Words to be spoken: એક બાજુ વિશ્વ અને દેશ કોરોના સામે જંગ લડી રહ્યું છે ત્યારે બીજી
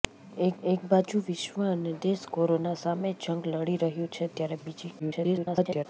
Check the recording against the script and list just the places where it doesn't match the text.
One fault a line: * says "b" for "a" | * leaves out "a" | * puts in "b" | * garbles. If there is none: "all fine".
* puts in "એક"
* garbles